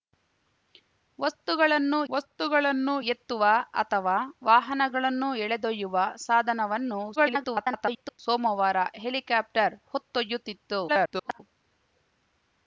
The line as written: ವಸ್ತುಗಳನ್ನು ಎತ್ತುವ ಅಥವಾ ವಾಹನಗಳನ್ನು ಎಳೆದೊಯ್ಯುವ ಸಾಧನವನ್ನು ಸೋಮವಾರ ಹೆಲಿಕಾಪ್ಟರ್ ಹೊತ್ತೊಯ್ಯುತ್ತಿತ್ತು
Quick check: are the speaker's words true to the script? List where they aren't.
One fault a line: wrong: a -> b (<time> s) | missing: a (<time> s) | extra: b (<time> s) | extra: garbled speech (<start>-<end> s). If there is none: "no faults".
extra: ವಸ್ತುಗಳನ್ನು (2.1 s)
extra: garbled speech (7.2-8.2 s)
extra: garbled speech (10.9-11.4 s)